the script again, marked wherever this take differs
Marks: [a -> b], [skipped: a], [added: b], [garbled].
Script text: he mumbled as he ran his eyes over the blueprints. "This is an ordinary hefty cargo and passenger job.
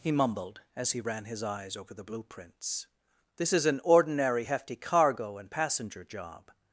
he mumbled as he ran his eyes over the blueprints. "This is an ordinary hefty cargo and passenger job.